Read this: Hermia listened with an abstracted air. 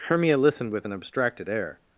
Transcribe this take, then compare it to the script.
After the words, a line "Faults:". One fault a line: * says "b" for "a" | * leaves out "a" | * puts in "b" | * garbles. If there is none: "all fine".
Hermia listened with an abstracted air.
Faults:
all fine